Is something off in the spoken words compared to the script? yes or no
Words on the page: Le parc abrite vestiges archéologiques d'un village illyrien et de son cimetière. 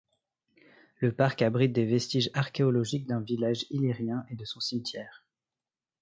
yes